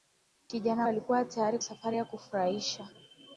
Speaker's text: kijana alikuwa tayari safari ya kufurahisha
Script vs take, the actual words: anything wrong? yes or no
no